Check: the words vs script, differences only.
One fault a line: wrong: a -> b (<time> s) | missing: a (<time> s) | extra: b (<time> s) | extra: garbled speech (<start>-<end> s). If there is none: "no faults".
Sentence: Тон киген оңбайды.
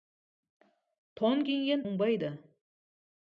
no faults